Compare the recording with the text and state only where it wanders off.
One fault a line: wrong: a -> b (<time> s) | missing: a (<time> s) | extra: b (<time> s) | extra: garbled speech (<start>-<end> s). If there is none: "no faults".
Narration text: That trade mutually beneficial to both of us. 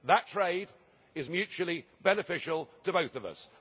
extra: is (1.1 s)